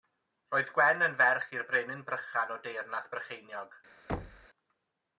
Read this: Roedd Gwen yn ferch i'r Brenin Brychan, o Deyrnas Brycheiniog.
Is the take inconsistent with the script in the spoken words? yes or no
no